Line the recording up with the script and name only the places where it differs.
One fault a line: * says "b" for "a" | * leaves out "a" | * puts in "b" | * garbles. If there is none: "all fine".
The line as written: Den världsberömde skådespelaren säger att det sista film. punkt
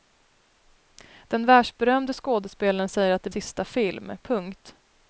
all fine